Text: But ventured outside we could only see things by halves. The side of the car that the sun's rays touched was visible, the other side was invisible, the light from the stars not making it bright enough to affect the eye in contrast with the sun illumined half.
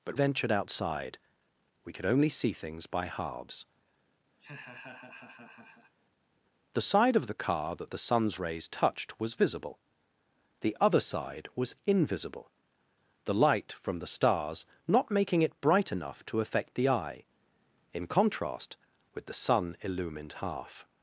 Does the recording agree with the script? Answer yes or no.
yes